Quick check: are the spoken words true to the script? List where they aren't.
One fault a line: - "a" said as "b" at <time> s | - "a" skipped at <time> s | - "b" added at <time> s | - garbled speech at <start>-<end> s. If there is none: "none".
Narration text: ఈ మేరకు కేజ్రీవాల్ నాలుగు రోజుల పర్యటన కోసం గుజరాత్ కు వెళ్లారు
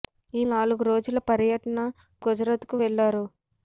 - "మేరకు కేజ్రీవాల్" skipped at 0.4 s
- "కోసం" skipped at 1.8 s